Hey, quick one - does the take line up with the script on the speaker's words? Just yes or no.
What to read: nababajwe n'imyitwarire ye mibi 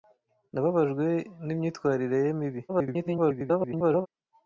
no